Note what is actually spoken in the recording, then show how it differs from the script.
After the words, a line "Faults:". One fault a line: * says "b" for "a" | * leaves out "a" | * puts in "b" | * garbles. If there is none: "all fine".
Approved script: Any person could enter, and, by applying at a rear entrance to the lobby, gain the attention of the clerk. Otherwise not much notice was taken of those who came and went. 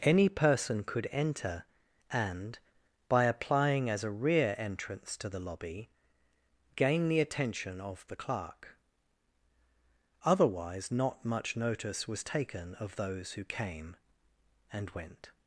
Any person could enter, and, by applying as a rear entrance to the lobby, gain the attention of the clerk. Otherwise not much notice was taken of those who came and went.
Faults:
* says "as" for "at"